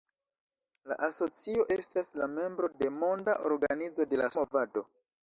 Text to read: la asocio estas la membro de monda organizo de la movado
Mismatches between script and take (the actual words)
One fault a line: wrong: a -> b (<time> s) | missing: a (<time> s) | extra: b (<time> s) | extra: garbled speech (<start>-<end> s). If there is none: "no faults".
no faults